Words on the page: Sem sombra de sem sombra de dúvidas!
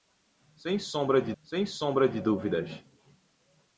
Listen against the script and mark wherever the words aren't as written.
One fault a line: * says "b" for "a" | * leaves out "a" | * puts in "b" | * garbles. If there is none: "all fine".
all fine